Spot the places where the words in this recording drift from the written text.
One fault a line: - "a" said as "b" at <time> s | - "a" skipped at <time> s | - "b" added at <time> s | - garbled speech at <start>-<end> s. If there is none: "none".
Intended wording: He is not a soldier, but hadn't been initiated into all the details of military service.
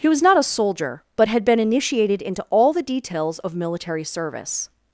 - "is" said as "was" at 0.1 s
- "hadn't" said as "had" at 1.3 s